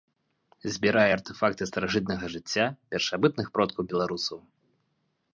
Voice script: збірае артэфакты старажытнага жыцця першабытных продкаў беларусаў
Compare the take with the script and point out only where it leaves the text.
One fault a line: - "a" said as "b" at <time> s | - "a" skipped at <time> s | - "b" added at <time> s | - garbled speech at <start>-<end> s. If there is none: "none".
none